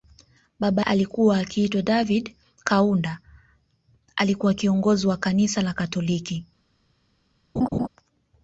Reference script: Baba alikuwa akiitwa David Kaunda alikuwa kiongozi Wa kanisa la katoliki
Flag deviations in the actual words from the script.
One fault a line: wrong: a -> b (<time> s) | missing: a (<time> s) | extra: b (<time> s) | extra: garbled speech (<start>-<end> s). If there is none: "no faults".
no faults